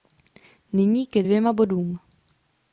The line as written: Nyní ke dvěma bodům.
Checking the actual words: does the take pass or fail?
pass